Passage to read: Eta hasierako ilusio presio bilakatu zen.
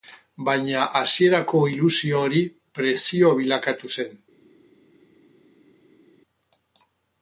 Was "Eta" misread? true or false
true